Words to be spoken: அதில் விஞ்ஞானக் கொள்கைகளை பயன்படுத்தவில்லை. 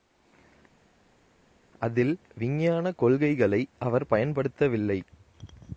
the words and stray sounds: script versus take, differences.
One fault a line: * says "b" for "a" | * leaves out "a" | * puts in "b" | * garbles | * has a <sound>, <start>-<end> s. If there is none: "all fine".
* puts in "அவர்"